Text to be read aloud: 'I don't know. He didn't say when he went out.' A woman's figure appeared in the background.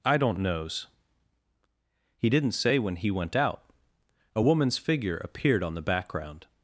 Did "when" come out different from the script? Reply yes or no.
no